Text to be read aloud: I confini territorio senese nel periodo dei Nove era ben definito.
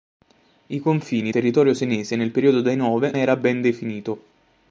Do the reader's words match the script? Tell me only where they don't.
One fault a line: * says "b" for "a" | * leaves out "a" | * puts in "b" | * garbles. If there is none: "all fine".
all fine